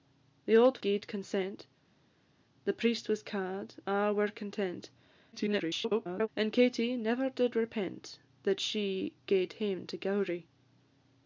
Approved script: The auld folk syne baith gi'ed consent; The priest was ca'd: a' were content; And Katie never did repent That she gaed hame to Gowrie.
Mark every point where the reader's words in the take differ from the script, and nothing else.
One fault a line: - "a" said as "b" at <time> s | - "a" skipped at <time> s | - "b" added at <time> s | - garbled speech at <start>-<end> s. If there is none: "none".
- "folk syne baith" skipped at 0.8 s
- garbled speech at 5.3-6.3 s